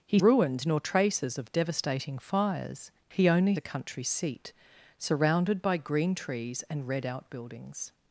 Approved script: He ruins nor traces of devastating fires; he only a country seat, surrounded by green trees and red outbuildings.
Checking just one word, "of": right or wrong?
right